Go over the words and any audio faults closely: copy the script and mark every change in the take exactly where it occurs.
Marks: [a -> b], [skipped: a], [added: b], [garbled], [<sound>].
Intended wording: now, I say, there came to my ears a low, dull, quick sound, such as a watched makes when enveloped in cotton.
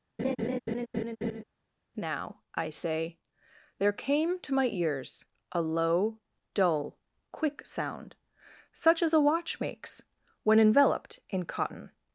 [laugh] now, I say, there came to my ears a low, dull, quick sound, such as a [watched -> watch] makes when enveloped in cotton.